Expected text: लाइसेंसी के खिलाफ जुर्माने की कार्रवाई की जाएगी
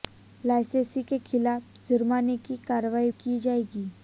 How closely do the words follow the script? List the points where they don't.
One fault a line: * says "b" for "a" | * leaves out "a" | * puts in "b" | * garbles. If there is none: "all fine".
all fine